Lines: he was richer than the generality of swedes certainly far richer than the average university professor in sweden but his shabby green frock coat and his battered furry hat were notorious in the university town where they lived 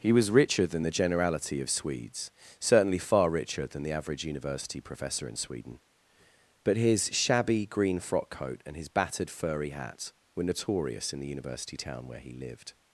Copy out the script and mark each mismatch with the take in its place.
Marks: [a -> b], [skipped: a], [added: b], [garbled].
he was richer than the generality of swedes certainly far richer than the average university professor in sweden but his shabby green frock coat and his battered furry hat were notorious in the university town where [they -> he] lived